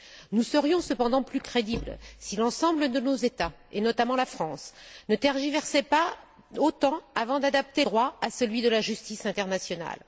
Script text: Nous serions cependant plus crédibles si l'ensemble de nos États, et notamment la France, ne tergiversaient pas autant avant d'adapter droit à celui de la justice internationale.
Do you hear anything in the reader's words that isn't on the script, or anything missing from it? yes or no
no